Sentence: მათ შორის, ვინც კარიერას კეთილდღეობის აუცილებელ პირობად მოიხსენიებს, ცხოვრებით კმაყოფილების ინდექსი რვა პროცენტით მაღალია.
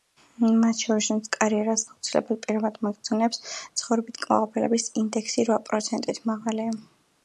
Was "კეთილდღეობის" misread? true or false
true